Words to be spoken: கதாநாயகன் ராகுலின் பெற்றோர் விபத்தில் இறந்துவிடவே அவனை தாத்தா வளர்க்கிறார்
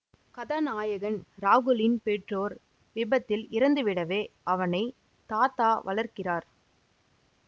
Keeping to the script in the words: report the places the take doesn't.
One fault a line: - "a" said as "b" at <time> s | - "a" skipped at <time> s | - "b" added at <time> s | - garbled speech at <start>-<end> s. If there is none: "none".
none